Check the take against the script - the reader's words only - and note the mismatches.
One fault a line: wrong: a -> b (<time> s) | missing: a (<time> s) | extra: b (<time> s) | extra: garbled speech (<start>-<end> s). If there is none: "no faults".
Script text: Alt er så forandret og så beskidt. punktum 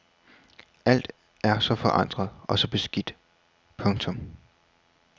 no faults